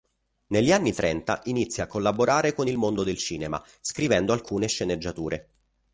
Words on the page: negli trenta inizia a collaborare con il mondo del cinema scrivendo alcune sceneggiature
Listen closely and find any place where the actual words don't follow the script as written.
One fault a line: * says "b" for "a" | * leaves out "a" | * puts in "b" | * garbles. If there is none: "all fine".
* puts in "anni"